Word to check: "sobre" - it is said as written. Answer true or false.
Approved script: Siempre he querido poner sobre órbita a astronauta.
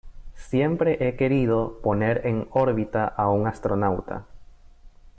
false